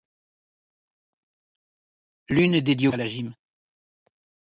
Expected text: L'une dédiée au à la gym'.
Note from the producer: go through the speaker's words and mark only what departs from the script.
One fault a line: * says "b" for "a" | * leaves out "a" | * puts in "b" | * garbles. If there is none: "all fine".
all fine